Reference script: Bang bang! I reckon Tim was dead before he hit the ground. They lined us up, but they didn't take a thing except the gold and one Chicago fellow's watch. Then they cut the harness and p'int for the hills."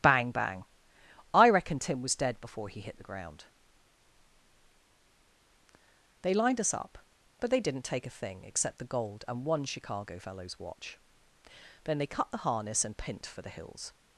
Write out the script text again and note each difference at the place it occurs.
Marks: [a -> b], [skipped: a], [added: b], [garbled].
Bang bang! I reckon Tim was dead before he hit the ground. They lined us up, but they didn't take a thing except the gold and one Chicago fellow's watch. Then they cut the harness and p'int for the hills."